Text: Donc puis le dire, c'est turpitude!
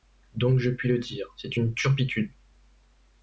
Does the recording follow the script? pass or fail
fail